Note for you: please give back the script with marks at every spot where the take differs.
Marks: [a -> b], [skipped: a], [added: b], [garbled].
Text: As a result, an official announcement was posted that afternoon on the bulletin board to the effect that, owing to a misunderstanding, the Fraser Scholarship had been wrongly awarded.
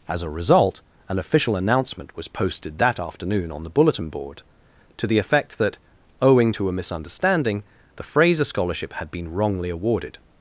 As a result, an official announcement was posted that afternoon on the bulletin board to the effect that, owing to a misunderstanding, the Fraser Scholarship had been wrongly awarded.